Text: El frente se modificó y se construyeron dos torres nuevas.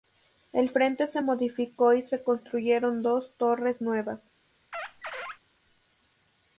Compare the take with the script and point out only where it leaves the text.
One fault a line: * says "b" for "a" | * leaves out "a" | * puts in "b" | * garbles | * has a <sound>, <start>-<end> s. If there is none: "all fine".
* has a squeak, 4.7-5.4 s